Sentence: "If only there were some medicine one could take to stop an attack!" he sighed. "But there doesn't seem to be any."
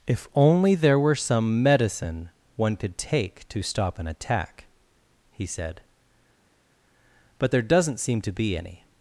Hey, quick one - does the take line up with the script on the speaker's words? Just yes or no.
no